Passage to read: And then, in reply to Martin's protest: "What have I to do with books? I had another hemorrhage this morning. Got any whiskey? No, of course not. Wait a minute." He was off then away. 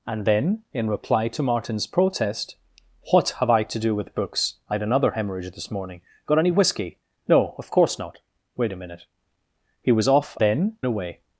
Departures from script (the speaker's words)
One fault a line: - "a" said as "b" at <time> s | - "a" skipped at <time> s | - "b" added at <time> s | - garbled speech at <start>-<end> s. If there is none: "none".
none